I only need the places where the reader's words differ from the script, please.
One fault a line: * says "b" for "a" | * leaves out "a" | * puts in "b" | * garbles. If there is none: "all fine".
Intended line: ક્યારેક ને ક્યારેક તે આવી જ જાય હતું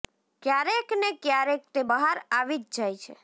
* puts in "બહાર"
* says "છે" for "હતું"